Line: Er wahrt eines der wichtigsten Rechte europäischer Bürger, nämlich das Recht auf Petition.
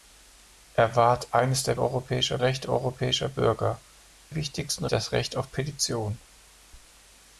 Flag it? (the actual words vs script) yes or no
yes